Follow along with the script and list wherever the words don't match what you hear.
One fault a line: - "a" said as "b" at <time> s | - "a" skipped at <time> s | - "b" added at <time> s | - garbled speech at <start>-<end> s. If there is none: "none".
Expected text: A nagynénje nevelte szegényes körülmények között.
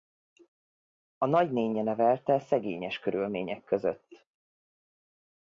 none